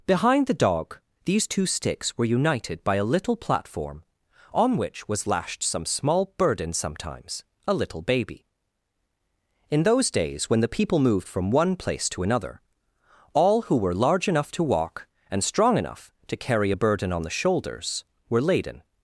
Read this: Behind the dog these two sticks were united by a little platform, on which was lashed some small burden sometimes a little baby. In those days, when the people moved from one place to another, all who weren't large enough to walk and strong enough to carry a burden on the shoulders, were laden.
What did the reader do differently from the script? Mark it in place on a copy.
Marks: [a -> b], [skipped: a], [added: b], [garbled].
Behind the dog these two sticks were united by a little platform, on which was lashed some small burden sometimes a little baby. In those days, when the people moved from one place to another, all who [weren't -> were] large enough to walk and strong enough to carry a burden on the shoulders, were laden.